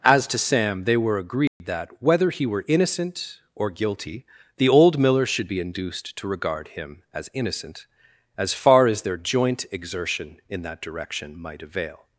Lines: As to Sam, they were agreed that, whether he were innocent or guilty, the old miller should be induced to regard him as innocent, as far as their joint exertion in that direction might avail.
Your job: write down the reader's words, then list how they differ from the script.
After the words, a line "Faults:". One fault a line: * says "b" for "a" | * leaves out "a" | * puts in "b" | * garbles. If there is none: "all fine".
As to Sam, they were agreed that, whether he were innocent or guilty, the old miller should be induced to regard him as innocent, as far as their joint exertion in that direction might avail.
Faults:
all fine